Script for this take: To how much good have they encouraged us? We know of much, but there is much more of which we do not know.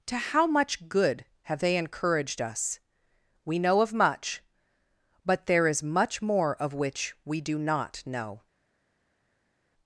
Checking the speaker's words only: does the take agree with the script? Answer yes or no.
yes